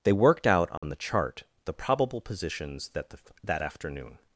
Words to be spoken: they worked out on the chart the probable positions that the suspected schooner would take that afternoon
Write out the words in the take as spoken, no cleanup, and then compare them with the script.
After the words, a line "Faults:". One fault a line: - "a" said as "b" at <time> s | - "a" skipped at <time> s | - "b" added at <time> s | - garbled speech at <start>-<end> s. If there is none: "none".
they worked out on the chart the probable positions that the that afternoon
Faults:
- "suspected schooner would take" skipped at 3.2 s